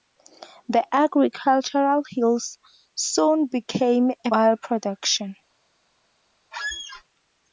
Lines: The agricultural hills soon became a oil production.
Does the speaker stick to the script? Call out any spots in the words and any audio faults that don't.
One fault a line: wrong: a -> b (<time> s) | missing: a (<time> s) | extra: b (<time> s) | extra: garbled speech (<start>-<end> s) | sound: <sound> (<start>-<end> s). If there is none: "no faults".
sound: squeak (6.5-7.0 s)